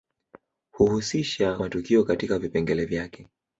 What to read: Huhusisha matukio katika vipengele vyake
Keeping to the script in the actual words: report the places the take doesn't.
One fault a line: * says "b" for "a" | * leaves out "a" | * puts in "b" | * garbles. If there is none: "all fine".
all fine